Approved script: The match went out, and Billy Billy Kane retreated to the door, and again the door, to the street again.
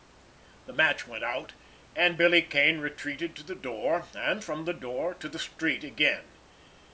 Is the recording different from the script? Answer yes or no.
yes